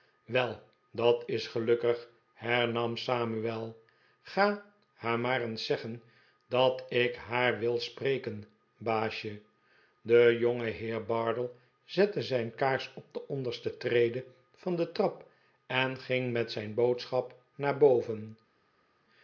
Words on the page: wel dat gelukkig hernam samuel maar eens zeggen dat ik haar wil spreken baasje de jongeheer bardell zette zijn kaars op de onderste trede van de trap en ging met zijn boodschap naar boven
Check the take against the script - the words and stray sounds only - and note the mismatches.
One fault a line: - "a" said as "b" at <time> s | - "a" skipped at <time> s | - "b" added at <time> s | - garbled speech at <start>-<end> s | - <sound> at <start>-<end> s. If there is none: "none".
- "is" added at 1.2 s
- "ga haar" added at 4.2 s